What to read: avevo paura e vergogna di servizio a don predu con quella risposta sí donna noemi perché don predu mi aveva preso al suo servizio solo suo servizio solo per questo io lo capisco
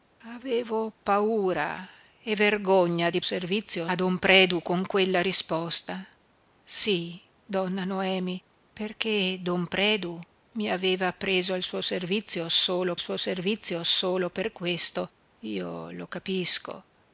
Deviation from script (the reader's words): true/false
false